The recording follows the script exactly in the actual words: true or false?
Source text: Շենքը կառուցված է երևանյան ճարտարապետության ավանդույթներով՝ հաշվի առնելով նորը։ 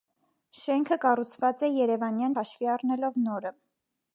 false